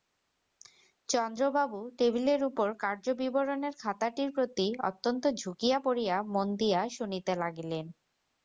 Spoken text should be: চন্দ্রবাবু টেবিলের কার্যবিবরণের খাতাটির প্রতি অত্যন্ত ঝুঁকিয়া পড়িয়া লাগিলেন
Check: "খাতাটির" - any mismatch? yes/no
no